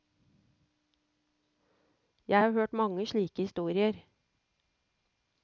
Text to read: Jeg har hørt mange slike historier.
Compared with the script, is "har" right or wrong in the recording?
right